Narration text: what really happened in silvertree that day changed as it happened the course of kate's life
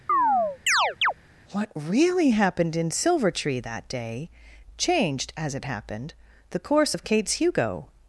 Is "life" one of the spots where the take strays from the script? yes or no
yes